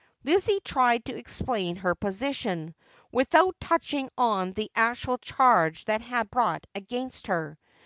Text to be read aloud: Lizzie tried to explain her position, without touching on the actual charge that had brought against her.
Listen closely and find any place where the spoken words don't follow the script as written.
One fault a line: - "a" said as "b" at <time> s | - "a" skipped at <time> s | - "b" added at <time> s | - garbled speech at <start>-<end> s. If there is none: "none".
none